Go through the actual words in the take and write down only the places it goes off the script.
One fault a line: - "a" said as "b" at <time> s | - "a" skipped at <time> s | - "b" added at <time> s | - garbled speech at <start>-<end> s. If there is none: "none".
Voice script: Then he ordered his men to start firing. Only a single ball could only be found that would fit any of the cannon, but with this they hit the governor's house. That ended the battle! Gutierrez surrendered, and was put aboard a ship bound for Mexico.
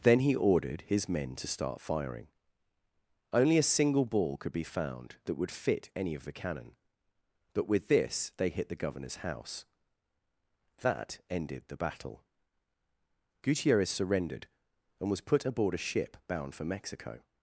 - "only" skipped at 4.5 s